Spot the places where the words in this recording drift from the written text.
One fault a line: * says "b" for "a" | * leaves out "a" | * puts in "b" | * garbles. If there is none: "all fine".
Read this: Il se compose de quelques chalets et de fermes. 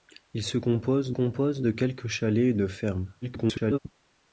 * puts in "compose"
* garbles